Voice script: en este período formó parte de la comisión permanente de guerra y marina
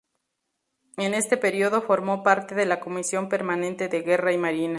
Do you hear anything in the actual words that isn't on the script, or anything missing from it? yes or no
no